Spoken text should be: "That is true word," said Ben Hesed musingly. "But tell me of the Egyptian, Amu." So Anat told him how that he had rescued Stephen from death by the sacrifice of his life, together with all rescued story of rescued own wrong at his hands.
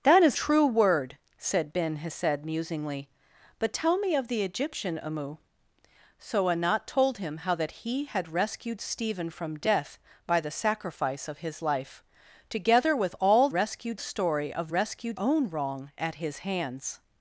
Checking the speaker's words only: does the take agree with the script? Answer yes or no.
yes